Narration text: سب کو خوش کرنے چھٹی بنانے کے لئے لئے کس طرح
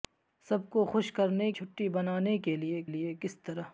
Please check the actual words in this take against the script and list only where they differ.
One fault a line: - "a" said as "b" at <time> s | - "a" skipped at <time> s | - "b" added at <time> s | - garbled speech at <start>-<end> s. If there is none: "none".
none